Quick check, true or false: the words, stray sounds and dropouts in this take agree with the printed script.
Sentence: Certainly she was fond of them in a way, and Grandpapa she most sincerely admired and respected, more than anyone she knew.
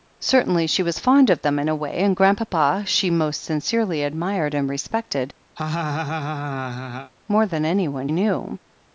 false